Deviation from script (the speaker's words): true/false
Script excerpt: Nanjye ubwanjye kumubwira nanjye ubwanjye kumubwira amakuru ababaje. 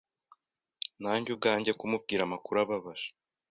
true